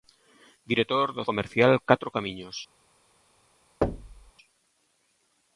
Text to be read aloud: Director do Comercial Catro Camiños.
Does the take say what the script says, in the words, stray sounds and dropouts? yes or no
no